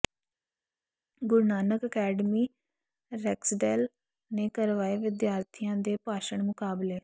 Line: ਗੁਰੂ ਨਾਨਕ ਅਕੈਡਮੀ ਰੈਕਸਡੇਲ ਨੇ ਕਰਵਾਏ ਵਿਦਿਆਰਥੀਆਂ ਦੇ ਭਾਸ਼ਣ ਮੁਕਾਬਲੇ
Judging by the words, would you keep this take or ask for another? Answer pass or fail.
pass